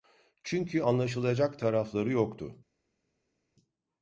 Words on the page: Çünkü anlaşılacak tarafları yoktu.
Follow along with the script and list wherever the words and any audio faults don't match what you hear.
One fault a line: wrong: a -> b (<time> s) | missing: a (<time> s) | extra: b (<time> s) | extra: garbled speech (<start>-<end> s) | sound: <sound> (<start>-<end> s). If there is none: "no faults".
no faults